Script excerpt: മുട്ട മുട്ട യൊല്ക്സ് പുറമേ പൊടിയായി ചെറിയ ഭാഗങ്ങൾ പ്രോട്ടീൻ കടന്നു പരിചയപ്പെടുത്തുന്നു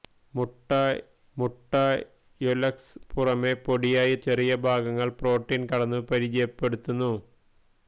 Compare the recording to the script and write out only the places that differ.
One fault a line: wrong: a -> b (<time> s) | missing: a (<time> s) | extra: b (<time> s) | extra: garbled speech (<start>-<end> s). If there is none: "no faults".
no faults